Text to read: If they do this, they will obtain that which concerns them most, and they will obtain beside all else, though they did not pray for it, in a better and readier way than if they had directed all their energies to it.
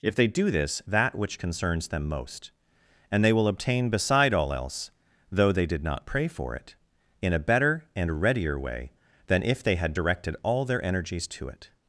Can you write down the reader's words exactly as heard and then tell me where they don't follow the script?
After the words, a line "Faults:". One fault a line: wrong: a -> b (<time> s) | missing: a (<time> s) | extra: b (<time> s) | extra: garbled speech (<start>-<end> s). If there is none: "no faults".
If they do this, that which concerns them most, and they will obtain beside all else, though they did not pray for it, in a better and readier way than if they had directed all their energies to it.
Faults:
missing: they will obtain (0.8 s)